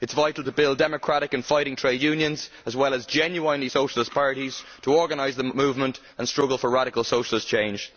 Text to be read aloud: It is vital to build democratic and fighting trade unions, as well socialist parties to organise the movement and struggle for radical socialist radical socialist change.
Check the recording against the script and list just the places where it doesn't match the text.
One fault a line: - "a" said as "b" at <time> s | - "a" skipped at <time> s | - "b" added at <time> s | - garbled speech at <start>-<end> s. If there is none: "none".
- "as genuinely" added at 2.9 s
- "radical socialist" skipped at 7.5 s